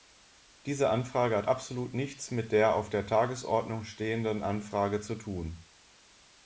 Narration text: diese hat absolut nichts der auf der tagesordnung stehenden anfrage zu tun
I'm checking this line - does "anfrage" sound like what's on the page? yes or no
yes